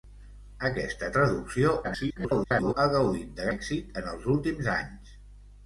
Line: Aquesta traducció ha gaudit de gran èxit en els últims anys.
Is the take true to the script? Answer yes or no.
no